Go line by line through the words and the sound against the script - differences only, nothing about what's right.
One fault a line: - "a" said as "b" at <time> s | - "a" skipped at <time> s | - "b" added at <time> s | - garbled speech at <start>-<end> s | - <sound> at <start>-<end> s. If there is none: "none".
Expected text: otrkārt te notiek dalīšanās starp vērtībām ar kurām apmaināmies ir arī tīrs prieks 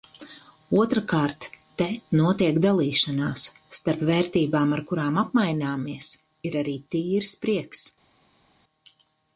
none